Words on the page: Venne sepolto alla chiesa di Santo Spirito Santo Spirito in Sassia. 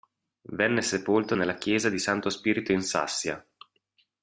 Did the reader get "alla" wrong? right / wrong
wrong